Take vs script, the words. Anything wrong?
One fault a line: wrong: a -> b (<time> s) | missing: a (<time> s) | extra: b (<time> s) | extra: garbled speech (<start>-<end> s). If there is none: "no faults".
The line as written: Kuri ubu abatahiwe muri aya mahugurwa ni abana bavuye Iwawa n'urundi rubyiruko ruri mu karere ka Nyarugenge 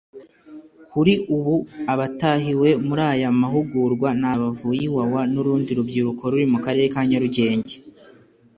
missing: abana (4.3 s)